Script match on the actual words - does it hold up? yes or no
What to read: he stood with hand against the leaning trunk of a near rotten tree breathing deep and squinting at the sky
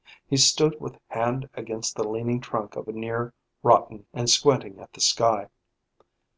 no